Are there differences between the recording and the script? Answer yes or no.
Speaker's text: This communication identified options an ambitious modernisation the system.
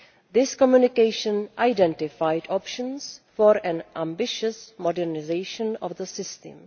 yes